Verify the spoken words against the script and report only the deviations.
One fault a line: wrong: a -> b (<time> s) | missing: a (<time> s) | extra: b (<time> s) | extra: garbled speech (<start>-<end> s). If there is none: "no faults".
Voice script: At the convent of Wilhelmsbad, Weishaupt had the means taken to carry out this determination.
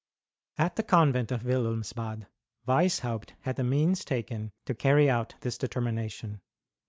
no faults